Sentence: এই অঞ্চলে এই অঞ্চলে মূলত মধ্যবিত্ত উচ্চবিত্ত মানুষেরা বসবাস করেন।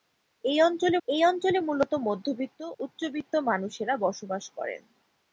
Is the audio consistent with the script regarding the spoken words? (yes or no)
yes